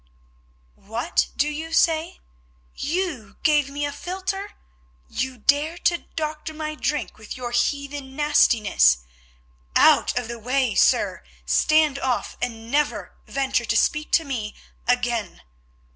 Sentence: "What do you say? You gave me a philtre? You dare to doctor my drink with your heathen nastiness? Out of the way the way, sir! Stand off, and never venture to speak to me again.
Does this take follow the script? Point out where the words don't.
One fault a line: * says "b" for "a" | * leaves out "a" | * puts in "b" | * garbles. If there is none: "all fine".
* leaves out "the way"